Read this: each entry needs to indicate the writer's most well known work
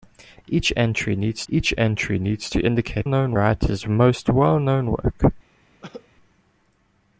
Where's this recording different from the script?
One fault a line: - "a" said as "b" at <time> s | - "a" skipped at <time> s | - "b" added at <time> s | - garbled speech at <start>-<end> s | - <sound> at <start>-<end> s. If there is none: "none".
- "each entry needs" added at 1.5 s
- "the" said as "known" at 3.0 s
- cough at 5.8-6.1 s